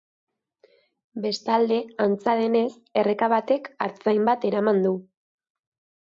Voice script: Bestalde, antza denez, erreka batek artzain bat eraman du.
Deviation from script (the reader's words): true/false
false